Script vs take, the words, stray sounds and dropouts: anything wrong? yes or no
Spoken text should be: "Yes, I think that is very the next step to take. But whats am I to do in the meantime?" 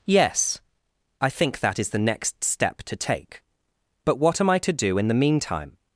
yes